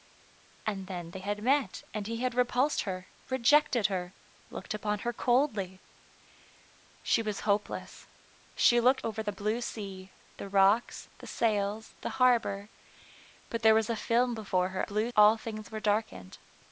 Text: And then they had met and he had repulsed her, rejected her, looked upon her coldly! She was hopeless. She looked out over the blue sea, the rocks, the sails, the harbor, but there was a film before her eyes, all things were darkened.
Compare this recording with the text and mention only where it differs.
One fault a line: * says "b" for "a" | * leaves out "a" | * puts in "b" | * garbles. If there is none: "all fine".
* leaves out "out"
* says "blue" for "eyes"